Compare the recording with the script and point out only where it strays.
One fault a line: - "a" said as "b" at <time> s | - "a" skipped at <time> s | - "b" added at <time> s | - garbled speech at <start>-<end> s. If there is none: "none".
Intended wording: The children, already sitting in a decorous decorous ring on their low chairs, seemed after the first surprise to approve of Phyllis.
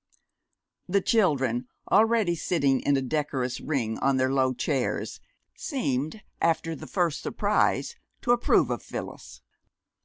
- "decorous" skipped at 3.6 s